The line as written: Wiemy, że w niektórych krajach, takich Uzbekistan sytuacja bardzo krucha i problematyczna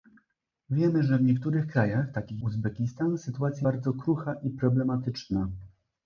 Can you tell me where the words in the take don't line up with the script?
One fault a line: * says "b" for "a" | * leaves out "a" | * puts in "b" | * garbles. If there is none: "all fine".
all fine